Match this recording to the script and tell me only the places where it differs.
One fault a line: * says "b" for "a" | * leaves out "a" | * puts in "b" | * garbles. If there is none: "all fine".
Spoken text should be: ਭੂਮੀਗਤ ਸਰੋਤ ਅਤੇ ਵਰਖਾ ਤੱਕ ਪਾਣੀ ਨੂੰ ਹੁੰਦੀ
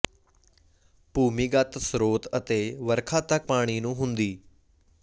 all fine